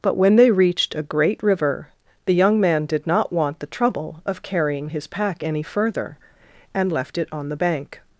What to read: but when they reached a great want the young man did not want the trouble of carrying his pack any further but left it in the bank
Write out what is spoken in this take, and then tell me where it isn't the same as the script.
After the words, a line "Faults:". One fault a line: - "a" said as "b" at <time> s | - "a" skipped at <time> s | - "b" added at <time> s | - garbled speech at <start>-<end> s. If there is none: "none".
but when they reached a great river the young man did not want the trouble of carrying his pack any further and left it on the bank
Faults:
- "want" said as "river" at 1.4 s
- "but" said as "and" at 6.7 s
- "in" said as "on" at 7.3 s